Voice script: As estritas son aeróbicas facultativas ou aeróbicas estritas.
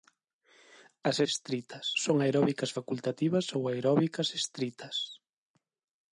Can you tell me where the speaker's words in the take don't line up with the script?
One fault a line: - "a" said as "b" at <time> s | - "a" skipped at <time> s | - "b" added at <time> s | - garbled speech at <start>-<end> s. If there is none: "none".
none